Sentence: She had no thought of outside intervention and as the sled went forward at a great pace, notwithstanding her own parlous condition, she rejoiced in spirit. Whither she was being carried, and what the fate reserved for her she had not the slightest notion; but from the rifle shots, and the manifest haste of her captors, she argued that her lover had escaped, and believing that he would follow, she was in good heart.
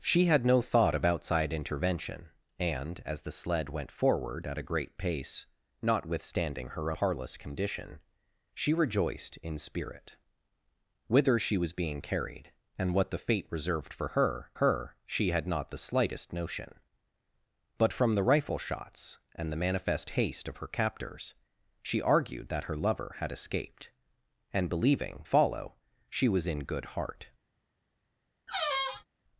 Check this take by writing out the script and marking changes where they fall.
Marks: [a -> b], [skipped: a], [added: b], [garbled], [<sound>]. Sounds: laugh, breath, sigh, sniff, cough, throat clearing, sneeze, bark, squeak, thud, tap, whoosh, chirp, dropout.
She had no thought of outside intervention and as the sled went forward at a great pace, notwithstanding her [skipped: own] parlous condition, she rejoiced in spirit. Whither she was being carried, and what the fate reserved for her [added: her] she had not the slightest notion; but from the rifle shots, and the manifest haste of her captors, she argued that her lover had escaped, and believing [skipped: that he would] follow, she was in good heart. [squeak]